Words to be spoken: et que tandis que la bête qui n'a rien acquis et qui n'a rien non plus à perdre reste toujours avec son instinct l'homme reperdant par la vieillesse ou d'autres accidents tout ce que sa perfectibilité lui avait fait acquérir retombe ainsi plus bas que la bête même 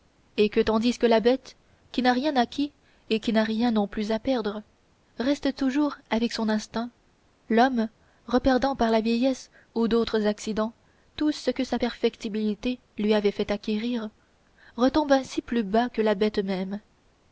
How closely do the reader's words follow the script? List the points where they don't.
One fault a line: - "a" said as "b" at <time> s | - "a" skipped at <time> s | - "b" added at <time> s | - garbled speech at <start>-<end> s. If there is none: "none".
none